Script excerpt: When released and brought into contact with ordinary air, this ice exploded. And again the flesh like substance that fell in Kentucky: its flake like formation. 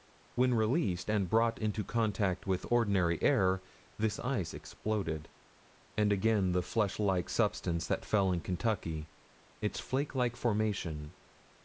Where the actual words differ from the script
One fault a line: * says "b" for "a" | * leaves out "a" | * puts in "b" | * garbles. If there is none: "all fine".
all fine